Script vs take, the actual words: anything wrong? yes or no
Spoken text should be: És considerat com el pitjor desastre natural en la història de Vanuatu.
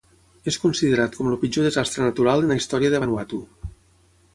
no